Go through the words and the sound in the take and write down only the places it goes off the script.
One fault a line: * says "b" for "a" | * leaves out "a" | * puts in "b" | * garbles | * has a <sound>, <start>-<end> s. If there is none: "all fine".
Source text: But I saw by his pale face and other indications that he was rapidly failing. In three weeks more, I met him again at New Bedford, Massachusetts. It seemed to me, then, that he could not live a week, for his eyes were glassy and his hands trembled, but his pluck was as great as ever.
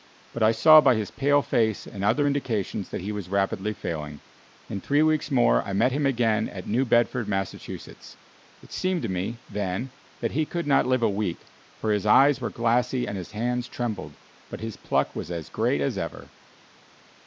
all fine